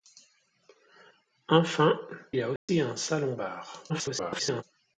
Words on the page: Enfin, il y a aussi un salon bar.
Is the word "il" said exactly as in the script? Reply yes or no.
no